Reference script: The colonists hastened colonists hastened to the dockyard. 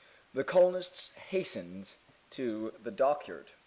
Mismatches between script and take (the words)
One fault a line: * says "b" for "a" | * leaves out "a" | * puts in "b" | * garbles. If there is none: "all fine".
* leaves out "colonists hastened"